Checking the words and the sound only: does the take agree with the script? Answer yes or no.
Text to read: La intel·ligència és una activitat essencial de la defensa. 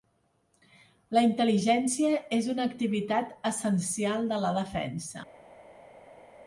yes